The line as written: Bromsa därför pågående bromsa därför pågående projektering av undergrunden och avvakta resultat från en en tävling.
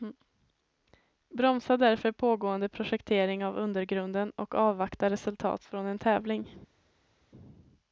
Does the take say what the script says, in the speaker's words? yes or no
no